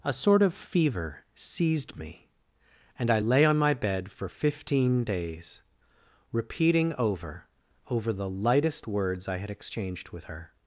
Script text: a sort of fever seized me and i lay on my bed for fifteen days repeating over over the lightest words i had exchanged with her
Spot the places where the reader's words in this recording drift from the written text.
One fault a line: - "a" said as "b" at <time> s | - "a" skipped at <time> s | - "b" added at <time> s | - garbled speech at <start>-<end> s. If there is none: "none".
none